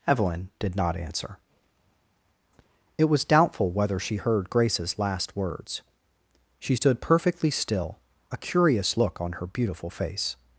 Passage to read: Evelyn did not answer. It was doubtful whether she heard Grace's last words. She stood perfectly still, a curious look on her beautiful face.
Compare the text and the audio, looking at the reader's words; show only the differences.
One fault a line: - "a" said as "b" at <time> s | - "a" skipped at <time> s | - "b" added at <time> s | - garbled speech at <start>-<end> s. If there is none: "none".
none